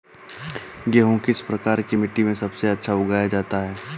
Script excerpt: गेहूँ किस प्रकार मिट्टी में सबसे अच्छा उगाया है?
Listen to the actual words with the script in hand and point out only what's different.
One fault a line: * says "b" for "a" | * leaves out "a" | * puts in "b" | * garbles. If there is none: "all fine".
* puts in "की"
* puts in "जाता"